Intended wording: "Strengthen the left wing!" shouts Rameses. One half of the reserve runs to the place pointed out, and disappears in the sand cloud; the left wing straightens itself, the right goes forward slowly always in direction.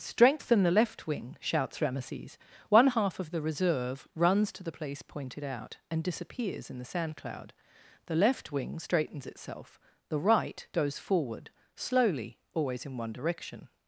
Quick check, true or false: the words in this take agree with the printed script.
false